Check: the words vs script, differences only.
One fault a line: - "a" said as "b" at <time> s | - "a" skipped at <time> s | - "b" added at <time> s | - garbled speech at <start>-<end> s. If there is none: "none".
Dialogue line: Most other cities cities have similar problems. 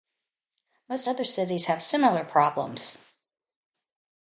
- "cities" skipped at 1.7 s